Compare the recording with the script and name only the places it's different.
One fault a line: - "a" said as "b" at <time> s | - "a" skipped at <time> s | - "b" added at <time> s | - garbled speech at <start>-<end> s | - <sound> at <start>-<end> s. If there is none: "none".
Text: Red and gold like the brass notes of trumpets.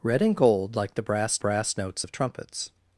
- "brass" added at 1.4 s